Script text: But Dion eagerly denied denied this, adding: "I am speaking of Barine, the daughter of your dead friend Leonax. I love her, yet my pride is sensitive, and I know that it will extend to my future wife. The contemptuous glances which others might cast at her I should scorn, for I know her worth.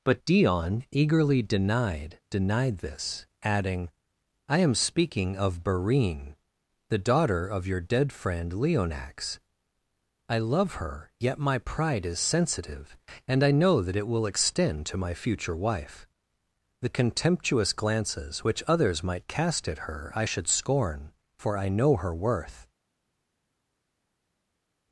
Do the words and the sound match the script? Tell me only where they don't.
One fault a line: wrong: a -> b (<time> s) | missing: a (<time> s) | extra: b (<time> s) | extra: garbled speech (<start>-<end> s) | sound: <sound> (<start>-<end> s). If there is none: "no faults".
no faults